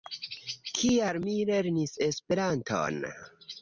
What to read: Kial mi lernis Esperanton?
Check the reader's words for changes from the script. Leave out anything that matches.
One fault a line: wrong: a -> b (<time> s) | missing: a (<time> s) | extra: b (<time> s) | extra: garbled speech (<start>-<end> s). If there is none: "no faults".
no faults